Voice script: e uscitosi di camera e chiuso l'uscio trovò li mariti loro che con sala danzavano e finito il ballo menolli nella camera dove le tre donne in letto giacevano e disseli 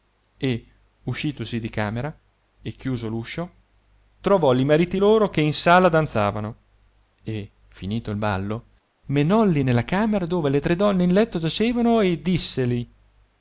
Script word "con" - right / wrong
wrong